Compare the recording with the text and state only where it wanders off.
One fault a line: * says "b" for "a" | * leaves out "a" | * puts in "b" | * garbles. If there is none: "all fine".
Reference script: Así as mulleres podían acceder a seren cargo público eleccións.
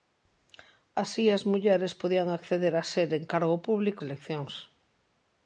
all fine